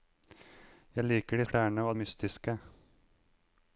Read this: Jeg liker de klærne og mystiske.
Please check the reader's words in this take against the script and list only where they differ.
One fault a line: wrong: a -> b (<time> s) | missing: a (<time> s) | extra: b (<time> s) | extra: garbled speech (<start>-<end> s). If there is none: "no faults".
no faults